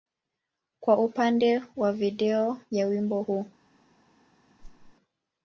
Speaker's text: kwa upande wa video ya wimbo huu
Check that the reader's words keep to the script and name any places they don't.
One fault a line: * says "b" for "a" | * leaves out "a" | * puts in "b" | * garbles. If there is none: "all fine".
all fine